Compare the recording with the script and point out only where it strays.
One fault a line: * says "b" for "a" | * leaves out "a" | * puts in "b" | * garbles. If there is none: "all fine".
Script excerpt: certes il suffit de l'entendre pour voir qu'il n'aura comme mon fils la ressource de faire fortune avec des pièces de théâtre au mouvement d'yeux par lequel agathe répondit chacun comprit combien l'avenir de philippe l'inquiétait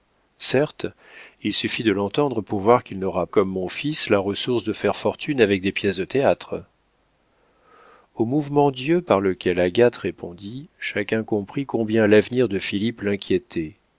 all fine